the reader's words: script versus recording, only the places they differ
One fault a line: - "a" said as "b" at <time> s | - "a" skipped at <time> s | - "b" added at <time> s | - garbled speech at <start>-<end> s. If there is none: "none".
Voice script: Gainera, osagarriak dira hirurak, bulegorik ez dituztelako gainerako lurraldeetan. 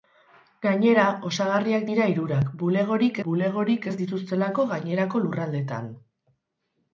- "bulegorik" added at 3.3 s